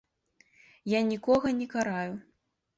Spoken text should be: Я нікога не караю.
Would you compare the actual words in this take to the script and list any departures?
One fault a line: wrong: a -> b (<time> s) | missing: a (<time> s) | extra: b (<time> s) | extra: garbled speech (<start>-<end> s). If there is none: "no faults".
no faults